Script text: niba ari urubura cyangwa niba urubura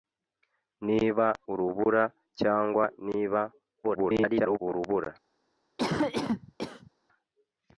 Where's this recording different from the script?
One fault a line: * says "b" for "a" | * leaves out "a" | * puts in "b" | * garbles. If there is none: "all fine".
* leaves out "ari"
* garbles